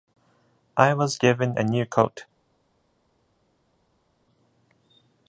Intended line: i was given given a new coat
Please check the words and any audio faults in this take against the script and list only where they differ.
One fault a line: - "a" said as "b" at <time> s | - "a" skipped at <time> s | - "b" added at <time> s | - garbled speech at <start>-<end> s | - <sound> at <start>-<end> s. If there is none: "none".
- "given" skipped at 1.6 s